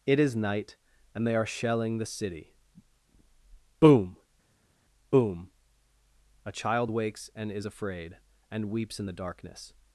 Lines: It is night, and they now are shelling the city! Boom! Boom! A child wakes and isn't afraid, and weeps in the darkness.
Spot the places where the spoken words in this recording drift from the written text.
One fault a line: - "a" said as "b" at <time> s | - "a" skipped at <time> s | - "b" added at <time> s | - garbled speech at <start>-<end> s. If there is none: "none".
- "now" skipped at 1.4 s
- "isn't" said as "is" at 7.5 s